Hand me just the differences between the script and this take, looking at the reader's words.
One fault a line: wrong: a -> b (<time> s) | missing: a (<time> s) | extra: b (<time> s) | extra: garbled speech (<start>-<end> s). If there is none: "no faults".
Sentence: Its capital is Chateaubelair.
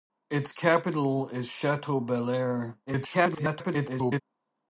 extra: garbled speech (2.9-4.2 s)